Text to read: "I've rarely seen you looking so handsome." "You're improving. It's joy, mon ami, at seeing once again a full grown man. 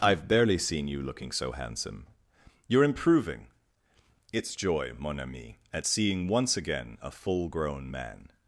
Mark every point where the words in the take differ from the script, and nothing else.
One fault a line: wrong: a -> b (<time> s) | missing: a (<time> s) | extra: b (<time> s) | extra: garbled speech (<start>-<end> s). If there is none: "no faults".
wrong: rarely -> barely (0.3 s)